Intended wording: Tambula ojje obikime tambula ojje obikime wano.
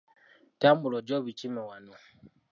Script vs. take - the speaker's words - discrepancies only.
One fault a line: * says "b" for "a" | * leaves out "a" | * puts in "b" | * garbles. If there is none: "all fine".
* leaves out "tambula ojje obikime"